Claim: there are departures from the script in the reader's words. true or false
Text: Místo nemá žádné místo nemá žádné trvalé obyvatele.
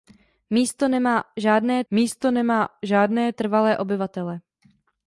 false